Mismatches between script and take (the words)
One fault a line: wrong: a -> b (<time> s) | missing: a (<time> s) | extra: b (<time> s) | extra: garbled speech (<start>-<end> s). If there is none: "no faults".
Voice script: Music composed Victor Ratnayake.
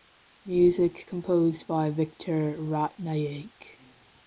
extra: by (1.7 s)